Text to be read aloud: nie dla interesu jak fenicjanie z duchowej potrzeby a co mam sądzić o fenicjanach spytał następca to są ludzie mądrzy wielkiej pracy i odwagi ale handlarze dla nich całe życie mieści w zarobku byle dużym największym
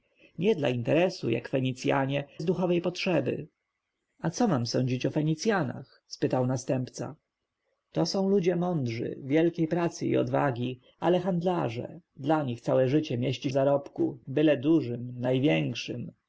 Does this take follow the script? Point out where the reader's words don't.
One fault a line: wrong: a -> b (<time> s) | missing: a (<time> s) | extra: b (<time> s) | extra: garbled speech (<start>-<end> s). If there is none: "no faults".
no faults